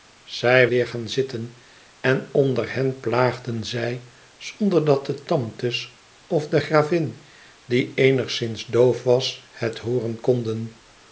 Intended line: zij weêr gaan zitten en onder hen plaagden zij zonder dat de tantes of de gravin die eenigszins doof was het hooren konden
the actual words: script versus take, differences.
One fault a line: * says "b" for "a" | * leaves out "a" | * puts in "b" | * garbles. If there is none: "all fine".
all fine